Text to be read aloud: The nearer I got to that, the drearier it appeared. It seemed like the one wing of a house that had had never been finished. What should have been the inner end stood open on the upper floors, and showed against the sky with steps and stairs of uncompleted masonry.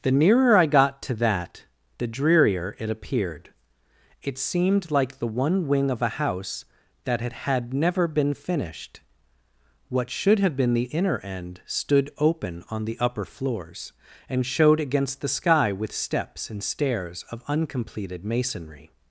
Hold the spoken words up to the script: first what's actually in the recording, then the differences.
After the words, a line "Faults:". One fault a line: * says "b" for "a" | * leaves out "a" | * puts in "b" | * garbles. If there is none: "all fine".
The nearer I got to that, the drearier it appeared. It seemed like the one wing of a house that had had never been finished. What should have been the inner end stood open on the upper floors, and showed against the sky with steps and stairs of uncompleted masonry.
Faults:
all fine